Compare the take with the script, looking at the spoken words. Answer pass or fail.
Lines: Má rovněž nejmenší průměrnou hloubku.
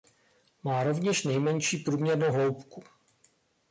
pass